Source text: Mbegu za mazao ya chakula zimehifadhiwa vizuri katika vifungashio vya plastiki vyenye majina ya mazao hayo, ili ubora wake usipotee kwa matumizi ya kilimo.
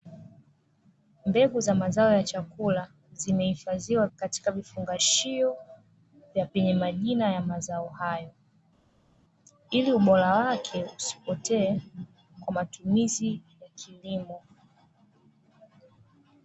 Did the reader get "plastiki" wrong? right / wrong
wrong